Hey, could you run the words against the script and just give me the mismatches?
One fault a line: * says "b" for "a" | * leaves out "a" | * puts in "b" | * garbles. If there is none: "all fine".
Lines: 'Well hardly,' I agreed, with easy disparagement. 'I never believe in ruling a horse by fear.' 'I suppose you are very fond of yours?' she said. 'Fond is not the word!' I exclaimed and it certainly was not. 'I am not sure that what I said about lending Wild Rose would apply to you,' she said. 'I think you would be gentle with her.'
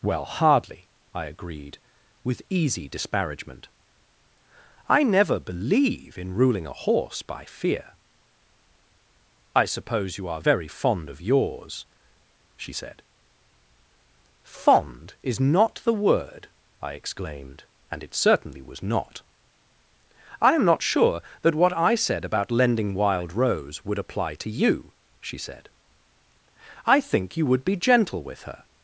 all fine